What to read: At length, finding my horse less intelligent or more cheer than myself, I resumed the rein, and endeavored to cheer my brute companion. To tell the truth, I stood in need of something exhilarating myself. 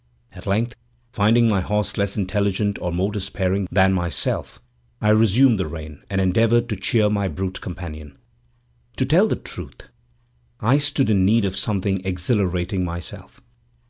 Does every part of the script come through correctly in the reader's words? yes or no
no